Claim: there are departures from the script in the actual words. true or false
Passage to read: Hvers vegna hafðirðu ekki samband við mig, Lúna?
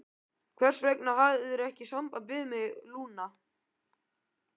false